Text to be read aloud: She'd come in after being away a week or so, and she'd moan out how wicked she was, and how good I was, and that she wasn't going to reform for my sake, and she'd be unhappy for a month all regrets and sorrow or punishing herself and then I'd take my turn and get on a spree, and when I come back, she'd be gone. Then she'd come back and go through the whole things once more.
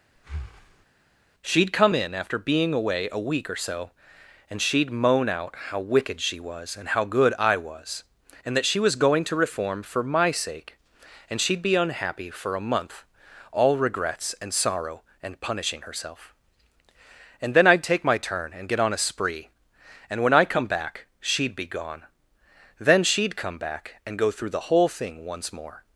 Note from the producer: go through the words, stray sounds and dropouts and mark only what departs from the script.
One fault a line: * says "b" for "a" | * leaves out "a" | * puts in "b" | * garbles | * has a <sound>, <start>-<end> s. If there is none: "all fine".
* has a breath, 0.2-0.9 s
* says "was" for "wasn't"
* says "and" for "or"
* says "thing" for "things"